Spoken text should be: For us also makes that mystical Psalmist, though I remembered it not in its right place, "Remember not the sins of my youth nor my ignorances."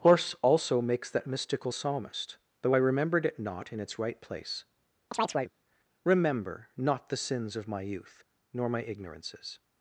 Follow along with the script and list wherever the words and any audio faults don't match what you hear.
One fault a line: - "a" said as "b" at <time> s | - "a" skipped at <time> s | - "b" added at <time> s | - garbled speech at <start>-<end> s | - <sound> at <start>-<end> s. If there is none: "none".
- "For us" said as "Horse" at 0.0 s
- chirp at 5.1-5.5 s